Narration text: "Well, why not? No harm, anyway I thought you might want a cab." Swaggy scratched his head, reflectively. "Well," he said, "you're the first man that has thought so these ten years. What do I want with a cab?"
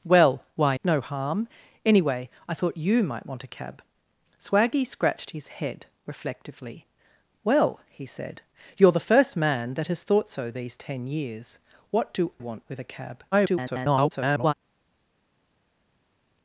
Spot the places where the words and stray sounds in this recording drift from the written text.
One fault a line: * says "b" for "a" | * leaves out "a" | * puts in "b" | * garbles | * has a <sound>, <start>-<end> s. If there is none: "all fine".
* leaves out "not"
* leaves out "I"
* garbles